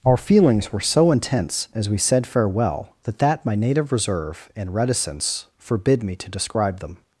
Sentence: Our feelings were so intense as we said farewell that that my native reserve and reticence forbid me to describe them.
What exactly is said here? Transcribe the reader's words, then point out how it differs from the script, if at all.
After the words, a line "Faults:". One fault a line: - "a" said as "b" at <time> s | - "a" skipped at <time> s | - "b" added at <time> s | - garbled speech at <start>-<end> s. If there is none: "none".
Our feelings were so intense as we said farewell that that my native reserve and reticence forbid me to describe them.
Faults:
none